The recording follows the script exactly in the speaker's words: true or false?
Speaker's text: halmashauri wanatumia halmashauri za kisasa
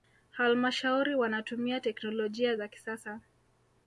false